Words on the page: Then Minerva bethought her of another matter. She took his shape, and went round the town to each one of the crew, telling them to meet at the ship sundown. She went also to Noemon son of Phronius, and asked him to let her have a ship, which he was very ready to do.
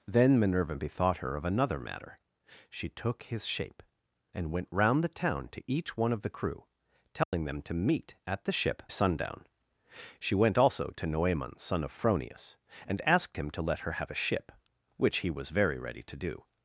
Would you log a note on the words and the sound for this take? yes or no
yes